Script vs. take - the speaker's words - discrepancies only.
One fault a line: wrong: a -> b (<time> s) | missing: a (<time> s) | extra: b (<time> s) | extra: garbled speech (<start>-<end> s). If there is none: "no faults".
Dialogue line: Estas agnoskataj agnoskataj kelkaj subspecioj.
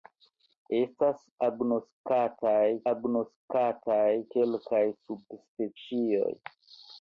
no faults